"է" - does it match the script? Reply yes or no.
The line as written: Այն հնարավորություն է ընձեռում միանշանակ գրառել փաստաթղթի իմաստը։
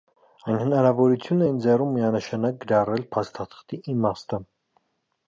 yes